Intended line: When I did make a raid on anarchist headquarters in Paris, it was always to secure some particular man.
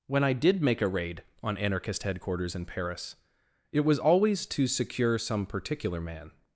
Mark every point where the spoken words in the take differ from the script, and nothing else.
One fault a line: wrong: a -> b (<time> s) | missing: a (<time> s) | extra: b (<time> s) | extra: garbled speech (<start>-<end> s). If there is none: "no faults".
no faults